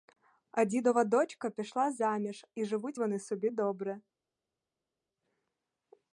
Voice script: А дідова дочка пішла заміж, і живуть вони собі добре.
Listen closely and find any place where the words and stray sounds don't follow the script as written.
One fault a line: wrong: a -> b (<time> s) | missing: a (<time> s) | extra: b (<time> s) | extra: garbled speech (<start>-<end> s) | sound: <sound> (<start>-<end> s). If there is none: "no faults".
no faults